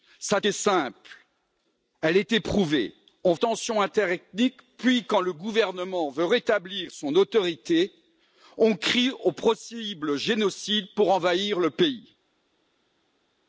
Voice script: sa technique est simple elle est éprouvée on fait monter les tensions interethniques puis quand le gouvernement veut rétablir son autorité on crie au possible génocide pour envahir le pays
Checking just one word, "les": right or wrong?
wrong